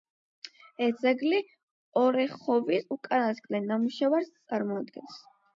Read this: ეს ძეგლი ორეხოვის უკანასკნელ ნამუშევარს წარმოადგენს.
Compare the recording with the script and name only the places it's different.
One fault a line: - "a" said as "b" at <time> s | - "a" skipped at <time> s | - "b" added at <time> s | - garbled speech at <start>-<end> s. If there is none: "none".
none